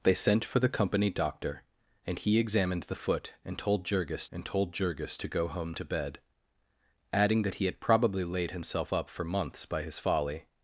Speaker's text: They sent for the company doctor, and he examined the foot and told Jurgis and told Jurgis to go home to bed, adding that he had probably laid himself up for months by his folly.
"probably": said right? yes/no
yes